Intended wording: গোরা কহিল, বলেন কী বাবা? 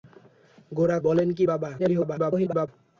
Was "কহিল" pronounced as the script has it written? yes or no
no